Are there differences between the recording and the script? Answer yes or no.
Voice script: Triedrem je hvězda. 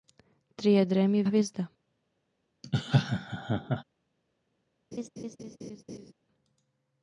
no